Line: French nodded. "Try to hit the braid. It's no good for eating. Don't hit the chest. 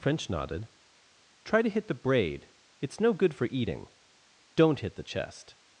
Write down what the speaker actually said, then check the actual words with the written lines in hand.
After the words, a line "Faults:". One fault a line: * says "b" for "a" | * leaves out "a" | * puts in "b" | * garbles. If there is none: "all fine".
French nodded. "Try to hit the braid. It's no good for eating. Don't hit the chest.
Faults:
all fine